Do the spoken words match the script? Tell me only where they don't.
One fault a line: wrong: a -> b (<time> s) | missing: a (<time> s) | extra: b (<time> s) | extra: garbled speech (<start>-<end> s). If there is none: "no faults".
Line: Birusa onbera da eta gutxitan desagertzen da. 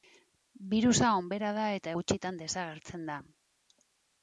no faults